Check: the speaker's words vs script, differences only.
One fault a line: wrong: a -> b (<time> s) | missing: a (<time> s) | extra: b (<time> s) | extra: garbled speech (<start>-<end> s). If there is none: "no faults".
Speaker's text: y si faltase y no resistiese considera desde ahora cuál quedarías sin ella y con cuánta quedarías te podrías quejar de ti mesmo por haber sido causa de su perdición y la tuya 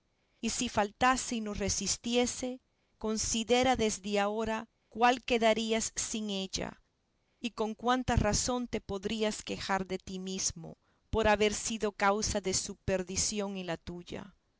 wrong: quedarías -> razón (8.2 s)